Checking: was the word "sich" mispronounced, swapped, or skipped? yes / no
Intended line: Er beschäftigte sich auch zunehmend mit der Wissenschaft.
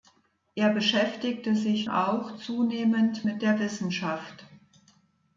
no